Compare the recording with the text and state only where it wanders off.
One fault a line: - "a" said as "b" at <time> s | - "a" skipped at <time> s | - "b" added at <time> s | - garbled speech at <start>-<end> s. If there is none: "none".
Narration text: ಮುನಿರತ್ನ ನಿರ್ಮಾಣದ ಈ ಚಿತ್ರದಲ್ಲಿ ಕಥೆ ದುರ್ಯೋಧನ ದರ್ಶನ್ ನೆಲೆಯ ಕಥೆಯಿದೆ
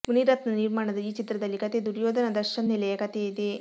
none